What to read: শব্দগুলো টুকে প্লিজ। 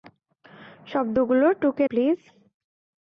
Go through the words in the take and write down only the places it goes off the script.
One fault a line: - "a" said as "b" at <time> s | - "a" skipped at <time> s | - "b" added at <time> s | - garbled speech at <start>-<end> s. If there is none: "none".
none